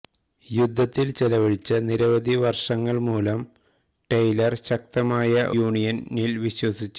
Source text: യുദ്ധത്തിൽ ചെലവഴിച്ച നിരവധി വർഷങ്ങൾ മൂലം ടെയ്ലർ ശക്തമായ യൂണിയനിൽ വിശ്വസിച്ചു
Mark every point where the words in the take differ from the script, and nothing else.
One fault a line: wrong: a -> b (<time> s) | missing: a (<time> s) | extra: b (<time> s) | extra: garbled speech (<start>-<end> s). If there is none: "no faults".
no faults